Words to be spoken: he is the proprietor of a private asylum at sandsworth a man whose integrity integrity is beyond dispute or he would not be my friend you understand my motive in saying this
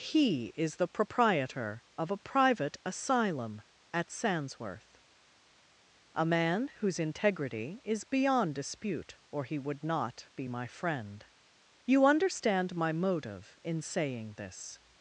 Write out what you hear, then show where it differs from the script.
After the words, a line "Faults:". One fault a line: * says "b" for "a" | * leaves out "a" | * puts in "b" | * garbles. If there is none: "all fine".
he is the proprietor of a private asylum at sandsworth a man whose integrity is beyond dispute or he would not be my friend you understand my motive in saying this
Faults:
* leaves out "integrity"